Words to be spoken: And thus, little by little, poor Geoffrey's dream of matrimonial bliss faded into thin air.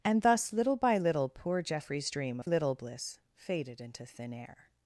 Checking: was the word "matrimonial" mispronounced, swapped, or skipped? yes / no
yes